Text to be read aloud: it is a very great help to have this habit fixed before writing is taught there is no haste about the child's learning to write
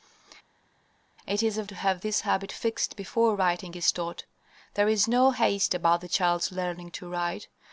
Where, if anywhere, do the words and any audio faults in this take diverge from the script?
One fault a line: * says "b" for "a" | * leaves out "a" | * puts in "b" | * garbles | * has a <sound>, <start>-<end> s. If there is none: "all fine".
* leaves out "very great help"